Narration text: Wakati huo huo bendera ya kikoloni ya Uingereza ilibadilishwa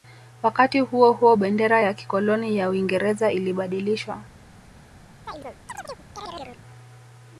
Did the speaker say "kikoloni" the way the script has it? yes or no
yes